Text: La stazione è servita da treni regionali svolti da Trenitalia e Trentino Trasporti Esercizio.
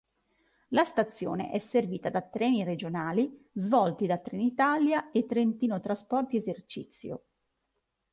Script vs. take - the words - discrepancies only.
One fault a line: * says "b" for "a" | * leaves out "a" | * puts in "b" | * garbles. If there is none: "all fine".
all fine